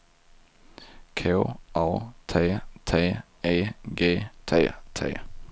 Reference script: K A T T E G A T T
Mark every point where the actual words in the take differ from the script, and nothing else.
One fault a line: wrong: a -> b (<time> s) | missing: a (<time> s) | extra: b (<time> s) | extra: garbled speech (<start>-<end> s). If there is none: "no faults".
missing: A (4.2 s)